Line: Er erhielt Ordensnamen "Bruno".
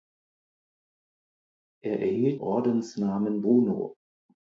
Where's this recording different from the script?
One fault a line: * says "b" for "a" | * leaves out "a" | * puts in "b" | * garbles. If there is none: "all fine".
all fine